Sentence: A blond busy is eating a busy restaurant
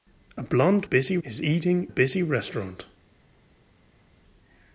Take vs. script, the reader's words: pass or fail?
pass